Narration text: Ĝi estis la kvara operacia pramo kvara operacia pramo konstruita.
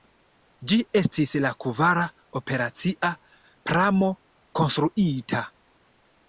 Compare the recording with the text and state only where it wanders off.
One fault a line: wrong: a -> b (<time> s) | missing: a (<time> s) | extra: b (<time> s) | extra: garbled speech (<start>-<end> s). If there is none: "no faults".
missing: kvara operacia pramo (4.1 s)